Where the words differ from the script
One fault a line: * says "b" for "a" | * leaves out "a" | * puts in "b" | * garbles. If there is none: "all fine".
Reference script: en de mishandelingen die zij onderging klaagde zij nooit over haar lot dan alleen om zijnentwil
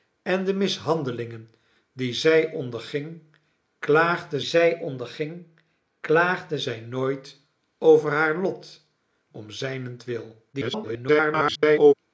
* puts in "onderging klaagde zij"
* leaves out "dan alleen"
* garbles